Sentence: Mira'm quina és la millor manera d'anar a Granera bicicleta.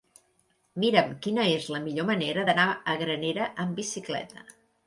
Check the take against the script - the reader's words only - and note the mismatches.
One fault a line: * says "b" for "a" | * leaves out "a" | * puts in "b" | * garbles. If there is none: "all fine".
* puts in "amb"